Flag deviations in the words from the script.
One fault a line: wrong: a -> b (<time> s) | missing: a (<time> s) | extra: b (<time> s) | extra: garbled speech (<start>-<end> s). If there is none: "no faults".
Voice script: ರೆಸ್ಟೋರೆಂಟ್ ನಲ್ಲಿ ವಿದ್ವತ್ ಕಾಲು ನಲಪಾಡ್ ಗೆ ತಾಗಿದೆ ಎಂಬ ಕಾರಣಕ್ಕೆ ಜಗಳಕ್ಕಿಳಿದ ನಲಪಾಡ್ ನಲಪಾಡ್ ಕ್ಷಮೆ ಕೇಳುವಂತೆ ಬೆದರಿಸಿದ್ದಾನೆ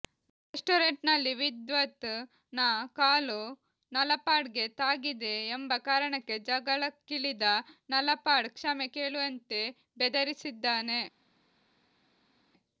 extra: ನ (2.5 s)
missing: ನಲಪಾಡ್ (8.5 s)